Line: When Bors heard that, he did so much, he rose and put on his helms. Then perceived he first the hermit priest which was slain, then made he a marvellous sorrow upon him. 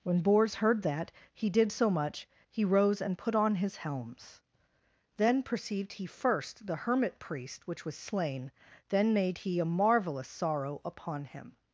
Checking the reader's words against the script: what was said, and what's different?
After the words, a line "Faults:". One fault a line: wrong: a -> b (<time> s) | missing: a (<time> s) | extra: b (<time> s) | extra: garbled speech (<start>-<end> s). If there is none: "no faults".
When Bors heard that, he did so much, he rose and put on his helms. Then perceived he first the hermit priest which was slain, then made he a marvellous sorrow upon him.
Faults:
no faults